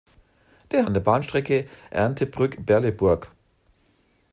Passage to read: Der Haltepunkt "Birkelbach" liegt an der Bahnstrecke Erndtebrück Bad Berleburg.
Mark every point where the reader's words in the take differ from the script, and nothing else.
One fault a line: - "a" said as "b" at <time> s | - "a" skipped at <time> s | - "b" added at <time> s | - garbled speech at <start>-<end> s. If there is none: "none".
- "Haltepunkt Birkelbach liegt" skipped at 0.9 s
- "Bad" skipped at 2.6 s